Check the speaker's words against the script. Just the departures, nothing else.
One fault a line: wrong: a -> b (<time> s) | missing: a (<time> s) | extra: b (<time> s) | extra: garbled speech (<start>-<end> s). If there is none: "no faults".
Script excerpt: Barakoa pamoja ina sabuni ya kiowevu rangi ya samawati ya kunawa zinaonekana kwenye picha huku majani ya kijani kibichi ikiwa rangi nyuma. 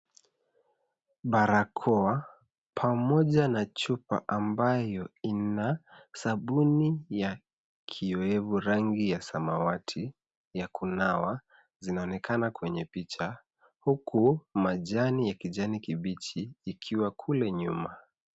extra: na chupa ambayo (3.5 s)
wrong: rangi -> kule (17.1 s)